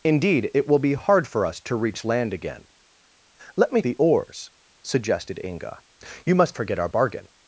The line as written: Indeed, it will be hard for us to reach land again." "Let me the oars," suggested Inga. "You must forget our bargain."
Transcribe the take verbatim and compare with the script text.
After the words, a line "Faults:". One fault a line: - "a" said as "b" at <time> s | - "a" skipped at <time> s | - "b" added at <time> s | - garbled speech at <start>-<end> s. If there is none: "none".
Indeed, it will be hard for us to reach land again." "Let me the oars," suggested Inga. "You must forget our bargain."
Faults:
none